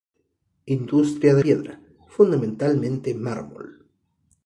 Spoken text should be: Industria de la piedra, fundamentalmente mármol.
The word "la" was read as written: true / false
false